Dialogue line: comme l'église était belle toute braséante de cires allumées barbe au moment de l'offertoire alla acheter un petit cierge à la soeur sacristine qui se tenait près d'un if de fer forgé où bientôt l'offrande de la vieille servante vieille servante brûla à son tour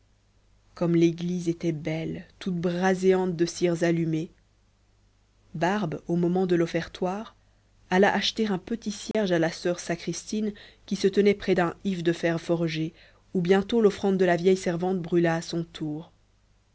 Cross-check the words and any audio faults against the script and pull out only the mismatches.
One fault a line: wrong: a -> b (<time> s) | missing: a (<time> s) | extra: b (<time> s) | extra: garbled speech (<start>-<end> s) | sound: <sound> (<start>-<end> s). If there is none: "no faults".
sound: dropout (9.1-9.1 s)
missing: vieille servante (15.0 s)